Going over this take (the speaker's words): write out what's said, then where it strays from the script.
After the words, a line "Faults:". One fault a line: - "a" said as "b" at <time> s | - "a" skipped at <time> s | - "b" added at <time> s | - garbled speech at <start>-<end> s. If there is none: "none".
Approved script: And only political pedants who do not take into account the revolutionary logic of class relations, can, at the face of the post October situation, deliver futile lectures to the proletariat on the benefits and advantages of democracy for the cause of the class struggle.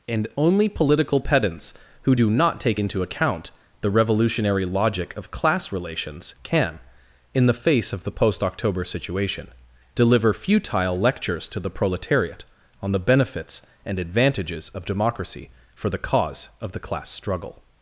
And only political pedants who do not take into account the revolutionary logic of class relations, can, in the face of the post October situation, deliver futile lectures to the proletariat on the benefits and advantages of democracy for the cause of the class struggle.
Faults:
- "at" said as "in" at 7.3 s